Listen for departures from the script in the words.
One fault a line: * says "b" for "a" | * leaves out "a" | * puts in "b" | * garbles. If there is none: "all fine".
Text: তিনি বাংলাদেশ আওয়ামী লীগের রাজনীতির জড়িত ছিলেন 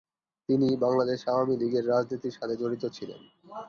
* puts in "সাথে"